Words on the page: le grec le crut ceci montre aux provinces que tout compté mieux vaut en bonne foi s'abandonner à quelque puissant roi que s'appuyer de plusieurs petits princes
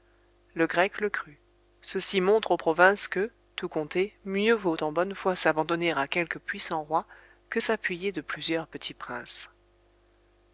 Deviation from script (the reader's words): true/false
false